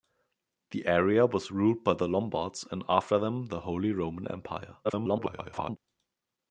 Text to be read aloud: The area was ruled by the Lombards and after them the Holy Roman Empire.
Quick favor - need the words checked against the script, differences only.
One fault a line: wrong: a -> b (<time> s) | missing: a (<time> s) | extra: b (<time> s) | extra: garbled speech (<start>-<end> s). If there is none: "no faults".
extra: garbled speech (4.8-5.8 s)